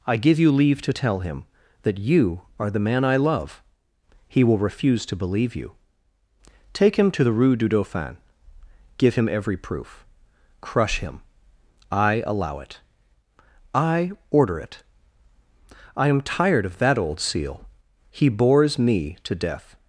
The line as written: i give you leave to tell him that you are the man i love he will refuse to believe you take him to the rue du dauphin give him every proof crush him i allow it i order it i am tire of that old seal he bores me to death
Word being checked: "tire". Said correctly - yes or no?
no